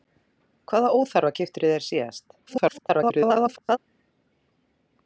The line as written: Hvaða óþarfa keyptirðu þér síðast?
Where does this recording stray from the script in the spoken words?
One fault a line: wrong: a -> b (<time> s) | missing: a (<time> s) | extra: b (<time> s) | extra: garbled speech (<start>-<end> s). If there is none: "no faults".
extra: garbled speech (2.5-3.8 s)